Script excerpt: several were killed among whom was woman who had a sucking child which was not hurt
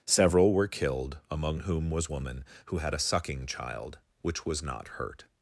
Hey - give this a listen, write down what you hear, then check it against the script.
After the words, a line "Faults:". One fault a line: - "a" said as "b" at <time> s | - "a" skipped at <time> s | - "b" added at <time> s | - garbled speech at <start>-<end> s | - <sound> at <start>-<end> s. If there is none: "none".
several were killed among whom was woman who had a sucking child which was not hurt
Faults:
none